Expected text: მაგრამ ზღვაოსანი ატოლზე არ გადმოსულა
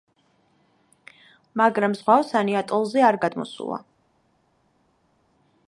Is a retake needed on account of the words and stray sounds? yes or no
no